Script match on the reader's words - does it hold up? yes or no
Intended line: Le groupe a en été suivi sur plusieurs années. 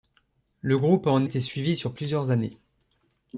yes